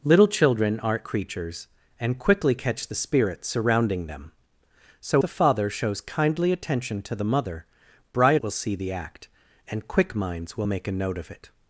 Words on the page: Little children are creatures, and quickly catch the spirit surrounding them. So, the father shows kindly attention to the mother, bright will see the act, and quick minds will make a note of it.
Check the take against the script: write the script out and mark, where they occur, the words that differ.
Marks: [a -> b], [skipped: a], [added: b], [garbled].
Little children are creatures, and quickly catch the spirit surrounding them. So, the father shows kindly attention to the mother, bright will see the act, and quick minds will make a note of it.